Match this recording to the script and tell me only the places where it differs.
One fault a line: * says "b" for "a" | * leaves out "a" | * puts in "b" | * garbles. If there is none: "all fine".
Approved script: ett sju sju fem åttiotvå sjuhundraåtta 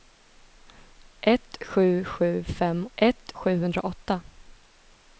* says "ett" for "åttiotvå"